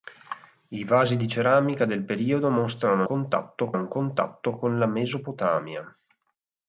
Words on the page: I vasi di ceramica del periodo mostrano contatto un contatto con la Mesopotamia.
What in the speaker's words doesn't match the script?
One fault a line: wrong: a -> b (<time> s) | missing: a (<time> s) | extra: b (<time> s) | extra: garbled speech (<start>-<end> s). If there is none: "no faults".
no faults